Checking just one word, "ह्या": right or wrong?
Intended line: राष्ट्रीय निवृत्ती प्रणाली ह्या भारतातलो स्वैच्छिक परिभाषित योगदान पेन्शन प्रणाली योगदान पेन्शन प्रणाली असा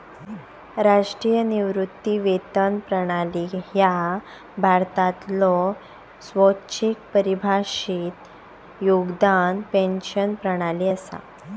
right